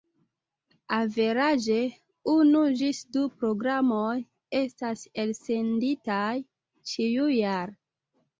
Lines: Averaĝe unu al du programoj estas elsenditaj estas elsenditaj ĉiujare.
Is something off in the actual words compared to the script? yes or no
yes